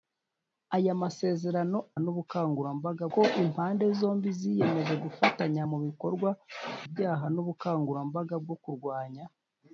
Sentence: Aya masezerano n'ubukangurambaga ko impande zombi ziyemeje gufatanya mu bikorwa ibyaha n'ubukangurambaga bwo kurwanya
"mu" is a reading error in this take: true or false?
false